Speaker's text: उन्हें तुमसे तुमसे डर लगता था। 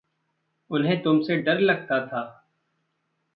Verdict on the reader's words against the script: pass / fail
fail